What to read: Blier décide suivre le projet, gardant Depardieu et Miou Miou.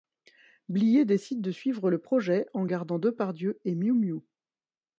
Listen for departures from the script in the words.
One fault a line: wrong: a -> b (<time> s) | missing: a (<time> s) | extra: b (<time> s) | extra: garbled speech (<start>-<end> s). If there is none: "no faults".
extra: de (1.4 s)
extra: en (2.5 s)